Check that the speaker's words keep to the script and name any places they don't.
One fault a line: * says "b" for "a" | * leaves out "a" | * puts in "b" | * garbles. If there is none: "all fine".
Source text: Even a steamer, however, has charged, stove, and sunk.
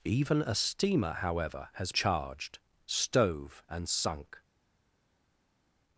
all fine